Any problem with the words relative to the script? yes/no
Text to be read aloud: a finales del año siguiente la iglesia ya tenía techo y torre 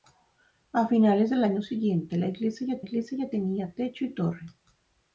yes